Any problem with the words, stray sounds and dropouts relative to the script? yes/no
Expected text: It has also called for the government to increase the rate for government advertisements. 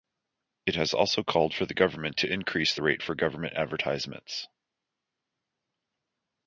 no